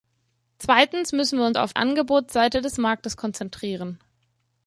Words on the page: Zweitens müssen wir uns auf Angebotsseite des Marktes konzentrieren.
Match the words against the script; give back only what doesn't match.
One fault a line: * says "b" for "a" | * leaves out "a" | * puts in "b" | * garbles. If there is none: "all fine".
all fine